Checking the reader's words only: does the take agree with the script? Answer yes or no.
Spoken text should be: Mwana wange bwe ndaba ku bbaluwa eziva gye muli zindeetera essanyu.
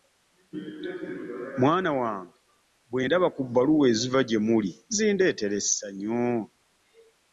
yes